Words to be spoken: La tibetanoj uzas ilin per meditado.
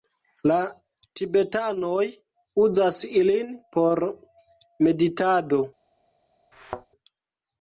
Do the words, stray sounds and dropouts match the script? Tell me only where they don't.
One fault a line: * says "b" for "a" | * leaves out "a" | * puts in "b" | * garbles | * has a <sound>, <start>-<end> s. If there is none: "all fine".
* says "por" for "per"
* has a thud, 6.5-6.9 s